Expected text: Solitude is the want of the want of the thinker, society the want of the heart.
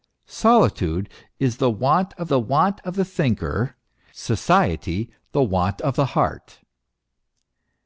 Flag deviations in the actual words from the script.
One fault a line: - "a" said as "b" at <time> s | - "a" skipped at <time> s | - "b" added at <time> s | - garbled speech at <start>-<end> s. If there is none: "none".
none